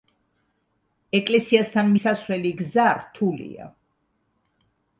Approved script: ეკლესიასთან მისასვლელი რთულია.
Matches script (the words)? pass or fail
fail